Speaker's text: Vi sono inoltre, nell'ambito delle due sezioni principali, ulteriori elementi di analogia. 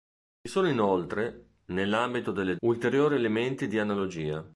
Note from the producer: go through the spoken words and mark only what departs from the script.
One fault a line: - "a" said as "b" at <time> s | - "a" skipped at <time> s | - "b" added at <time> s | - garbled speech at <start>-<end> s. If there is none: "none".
- "due sezioni principali" skipped at 2.6 s